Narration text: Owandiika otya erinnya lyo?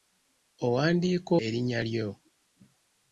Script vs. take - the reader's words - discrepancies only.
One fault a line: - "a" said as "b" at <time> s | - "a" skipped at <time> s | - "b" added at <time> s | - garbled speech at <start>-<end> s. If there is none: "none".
- "otya" skipped at 1.3 s